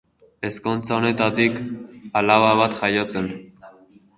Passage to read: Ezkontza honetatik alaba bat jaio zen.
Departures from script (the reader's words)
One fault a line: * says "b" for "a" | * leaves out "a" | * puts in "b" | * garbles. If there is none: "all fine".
all fine